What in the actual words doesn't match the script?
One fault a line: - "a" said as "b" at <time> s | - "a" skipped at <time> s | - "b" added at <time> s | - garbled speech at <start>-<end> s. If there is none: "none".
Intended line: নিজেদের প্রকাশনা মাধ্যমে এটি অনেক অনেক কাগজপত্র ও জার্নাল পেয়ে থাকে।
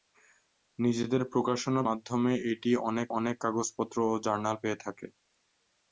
none